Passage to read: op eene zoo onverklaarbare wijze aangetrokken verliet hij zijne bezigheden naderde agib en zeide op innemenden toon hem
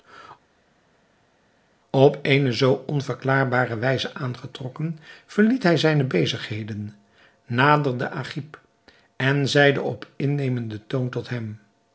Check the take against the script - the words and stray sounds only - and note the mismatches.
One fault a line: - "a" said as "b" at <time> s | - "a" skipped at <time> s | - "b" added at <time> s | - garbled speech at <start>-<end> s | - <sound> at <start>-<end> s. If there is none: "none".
- "tot" added at 11.1 s